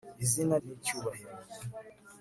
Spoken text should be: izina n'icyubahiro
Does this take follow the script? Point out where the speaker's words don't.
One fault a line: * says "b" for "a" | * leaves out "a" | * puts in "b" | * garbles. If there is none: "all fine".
all fine